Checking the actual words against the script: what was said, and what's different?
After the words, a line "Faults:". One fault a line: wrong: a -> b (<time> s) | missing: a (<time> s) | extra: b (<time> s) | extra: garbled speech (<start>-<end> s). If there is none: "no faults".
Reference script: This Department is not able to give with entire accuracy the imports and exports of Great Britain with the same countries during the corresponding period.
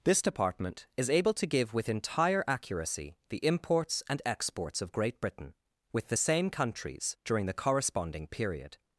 This Department is able to give with entire accuracy the imports and exports of Great Britain with the same countries during the corresponding period.
Faults:
missing: not (1.1 s)